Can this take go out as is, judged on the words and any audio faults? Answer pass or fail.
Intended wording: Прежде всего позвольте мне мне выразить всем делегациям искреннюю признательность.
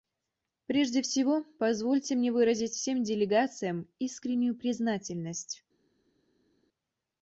fail